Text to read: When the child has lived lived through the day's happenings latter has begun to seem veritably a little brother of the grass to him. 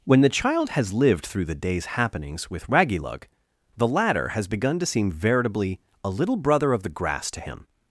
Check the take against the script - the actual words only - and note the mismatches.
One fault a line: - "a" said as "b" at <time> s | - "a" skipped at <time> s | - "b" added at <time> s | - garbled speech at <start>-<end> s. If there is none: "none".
- "lived" skipped at 1.3 s
- "with Raggylug the" added at 2.5 s